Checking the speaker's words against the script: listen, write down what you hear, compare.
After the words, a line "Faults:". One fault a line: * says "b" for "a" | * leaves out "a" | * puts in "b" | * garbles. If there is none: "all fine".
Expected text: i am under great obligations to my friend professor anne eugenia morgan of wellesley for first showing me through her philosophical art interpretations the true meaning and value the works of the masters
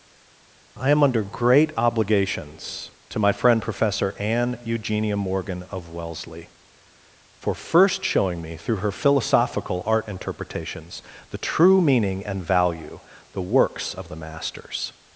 i am under great obligations to my friend professor anne eugenia morgan of wellesley for first showing me through her philosophical art interpretations the true meaning and value the works of the masters
Faults:
all fine